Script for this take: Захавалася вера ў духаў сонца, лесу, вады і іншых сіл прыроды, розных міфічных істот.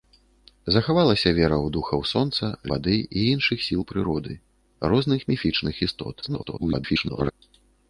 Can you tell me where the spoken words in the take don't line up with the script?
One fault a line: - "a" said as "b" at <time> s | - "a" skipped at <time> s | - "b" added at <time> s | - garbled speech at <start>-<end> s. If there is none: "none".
- "лесу" skipped at 2.5 s
- garbled speech at 6.2-7.3 s